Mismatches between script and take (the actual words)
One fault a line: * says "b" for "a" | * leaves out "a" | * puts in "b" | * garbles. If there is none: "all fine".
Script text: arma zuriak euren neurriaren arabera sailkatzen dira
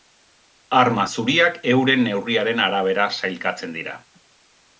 all fine